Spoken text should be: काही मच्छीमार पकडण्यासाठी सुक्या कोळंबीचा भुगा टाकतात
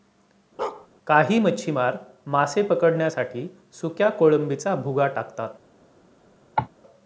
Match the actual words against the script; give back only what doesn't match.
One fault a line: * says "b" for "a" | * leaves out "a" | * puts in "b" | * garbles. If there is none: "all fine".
* puts in "मासे"